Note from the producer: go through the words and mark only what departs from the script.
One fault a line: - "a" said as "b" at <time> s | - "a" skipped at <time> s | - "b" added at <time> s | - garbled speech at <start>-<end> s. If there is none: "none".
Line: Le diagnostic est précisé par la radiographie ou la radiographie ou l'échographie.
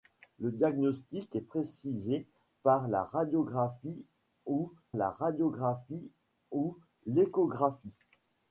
none